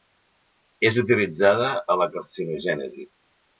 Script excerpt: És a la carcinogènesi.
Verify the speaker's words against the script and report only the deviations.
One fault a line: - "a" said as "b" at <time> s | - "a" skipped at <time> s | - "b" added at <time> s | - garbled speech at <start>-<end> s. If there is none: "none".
- "utilitzada" added at 1.0 s